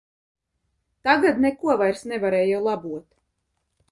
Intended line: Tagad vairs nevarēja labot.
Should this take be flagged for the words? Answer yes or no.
yes